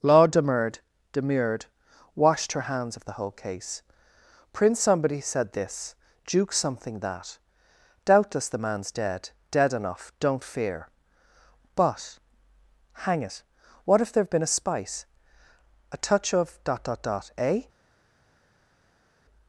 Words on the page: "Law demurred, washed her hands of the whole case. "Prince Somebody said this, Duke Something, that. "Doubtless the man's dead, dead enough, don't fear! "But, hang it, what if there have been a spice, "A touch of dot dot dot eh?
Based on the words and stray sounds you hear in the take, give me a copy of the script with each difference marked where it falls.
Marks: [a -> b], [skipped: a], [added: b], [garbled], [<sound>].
"Law demurred, [added: demurred] washed her hands of the whole case. "Prince Somebody said this, Duke Something, that. "Doubtless the man's dead, dead enough, don't fear! "But, hang it, what if there have been a spice, "A touch of dot dot dot eh?